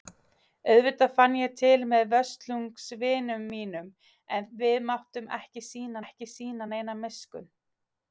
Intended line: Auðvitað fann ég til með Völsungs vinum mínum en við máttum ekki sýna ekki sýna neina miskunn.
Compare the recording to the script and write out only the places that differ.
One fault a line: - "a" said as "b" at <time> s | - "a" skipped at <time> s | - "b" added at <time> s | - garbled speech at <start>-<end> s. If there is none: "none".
none